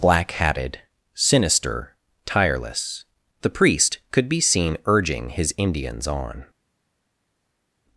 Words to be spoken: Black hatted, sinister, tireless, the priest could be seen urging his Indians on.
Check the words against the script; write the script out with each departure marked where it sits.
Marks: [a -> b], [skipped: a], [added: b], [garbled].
Black hatted, sinister, tireless, the priest could be seen urging his Indians on.